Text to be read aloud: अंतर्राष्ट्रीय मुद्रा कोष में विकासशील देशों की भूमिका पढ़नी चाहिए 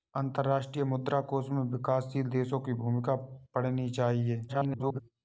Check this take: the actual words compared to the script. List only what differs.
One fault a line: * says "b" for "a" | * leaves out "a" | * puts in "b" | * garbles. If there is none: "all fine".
* garbles